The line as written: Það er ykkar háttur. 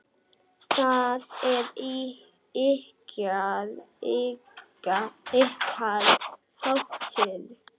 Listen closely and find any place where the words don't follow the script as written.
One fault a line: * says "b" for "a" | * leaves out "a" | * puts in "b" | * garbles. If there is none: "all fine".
all fine